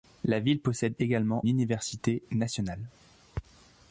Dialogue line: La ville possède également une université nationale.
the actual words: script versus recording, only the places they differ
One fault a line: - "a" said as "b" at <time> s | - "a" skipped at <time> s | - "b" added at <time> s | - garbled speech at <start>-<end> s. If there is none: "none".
- "une" skipped at 1.4 s